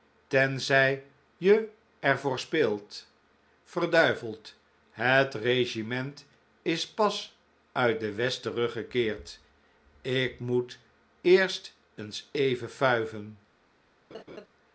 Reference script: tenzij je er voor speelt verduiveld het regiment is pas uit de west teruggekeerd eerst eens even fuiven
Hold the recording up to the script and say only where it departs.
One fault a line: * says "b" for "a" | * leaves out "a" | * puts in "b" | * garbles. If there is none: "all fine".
* puts in "ik moet"